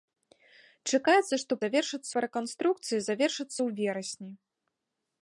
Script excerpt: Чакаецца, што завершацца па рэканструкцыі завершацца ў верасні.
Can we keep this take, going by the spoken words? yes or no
yes